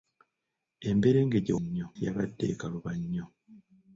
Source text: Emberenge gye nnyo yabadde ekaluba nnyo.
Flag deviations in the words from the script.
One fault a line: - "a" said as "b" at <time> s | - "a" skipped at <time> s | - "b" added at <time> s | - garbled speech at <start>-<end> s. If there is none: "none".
none